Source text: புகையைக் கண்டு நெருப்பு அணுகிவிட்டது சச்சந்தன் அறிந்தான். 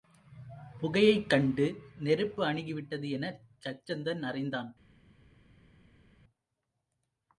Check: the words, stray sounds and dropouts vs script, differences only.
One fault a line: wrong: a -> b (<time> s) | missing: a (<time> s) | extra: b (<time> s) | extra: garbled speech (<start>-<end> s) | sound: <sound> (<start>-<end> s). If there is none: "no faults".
extra: எனச் (3.1 s)